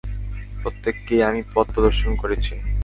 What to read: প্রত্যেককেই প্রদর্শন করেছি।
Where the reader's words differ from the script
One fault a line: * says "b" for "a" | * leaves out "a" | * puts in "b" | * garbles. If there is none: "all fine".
* puts in "আমি পথ"